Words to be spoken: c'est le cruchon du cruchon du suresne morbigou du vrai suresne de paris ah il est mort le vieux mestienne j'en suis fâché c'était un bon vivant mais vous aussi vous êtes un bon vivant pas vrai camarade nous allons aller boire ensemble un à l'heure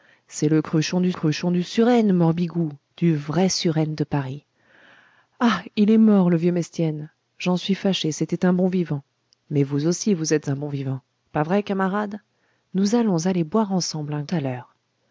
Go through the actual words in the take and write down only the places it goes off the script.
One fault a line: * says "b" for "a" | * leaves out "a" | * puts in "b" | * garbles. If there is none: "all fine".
all fine